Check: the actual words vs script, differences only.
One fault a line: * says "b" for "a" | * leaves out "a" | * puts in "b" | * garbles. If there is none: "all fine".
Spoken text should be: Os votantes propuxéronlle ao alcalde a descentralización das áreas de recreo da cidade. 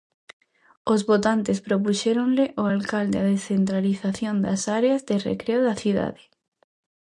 all fine